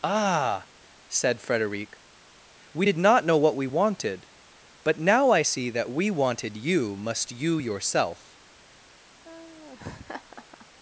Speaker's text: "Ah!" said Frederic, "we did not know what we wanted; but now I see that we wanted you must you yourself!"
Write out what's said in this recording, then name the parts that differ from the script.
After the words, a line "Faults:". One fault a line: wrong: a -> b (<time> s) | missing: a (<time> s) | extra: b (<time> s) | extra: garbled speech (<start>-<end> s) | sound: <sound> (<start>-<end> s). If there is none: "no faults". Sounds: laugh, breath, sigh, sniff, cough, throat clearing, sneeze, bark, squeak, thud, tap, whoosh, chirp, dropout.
"Ah!" said Frederic, "we did not know what we wanted; but now I see that we wanted you must you yourself!"
Faults:
sound: laugh (9.2-10.7 s)